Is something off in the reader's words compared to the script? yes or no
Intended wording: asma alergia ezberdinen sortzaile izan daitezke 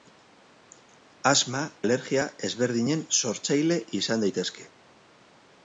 no